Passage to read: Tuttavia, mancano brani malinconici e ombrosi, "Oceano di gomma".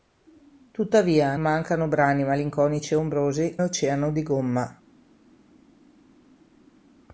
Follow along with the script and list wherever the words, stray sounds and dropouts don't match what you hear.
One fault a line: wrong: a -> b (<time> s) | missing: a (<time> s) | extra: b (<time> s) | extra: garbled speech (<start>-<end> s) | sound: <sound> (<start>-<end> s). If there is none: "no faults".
no faults